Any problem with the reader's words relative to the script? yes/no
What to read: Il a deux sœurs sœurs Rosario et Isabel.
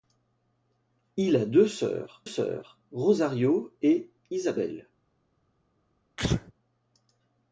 no